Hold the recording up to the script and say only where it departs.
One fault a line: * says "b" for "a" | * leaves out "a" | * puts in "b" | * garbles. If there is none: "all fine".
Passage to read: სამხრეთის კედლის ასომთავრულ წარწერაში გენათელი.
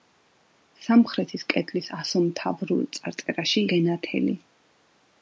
all fine